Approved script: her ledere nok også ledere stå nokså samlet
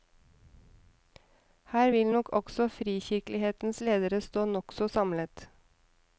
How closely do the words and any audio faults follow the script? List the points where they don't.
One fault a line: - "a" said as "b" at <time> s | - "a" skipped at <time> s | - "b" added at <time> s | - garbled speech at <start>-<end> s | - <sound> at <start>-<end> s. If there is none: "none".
- "ledere" said as "vil" at 1.9 s
- "frikirkelighetens" added at 2.7 s